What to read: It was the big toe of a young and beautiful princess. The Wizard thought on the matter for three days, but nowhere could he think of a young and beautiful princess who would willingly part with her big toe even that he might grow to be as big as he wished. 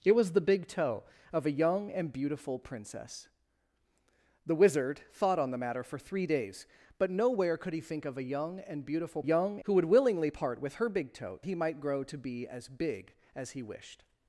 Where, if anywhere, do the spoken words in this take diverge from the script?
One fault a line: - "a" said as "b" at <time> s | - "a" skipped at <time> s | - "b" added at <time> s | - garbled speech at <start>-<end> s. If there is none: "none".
- "princess" said as "young" at 9.2 s
- "even that" skipped at 11.4 s